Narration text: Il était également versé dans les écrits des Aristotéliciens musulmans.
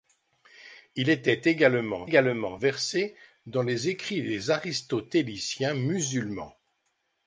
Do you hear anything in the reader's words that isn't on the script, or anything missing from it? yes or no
yes